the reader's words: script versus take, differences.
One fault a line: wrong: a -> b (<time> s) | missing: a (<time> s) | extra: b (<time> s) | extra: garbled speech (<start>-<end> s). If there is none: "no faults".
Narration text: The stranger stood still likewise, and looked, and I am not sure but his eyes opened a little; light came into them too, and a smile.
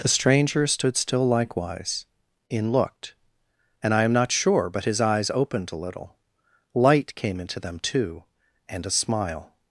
wrong: and -> in (2.5 s)